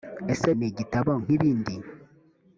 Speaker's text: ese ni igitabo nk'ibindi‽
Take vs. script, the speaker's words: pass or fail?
pass